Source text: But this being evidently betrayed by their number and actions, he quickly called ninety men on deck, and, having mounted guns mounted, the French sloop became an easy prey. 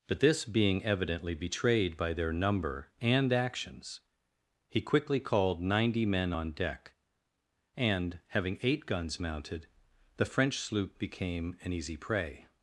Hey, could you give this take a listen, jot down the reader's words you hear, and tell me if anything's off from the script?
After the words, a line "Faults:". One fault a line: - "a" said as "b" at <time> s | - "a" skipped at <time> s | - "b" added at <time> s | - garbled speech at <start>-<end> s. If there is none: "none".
But this being evidently betrayed by their number and actions, he quickly called ninety men on deck, and, having eight guns mounted, the French sloop became an easy prey.
Faults:
- "mounted" said as "eight" at 8.6 s